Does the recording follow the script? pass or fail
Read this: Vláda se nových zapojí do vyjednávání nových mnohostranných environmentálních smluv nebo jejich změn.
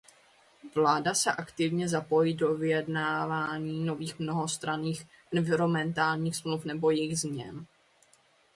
fail